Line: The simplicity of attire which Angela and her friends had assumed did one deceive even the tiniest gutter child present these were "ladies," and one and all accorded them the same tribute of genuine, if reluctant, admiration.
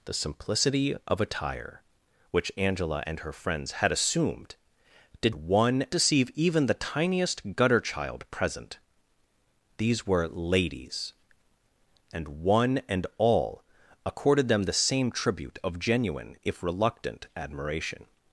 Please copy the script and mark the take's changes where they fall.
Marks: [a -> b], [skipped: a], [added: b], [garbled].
The simplicity of attire which Angela and her friends had assumed did one deceive even the tiniest gutter child present these were "ladies," and one and all accorded them the same tribute of genuine, if reluctant, admiration.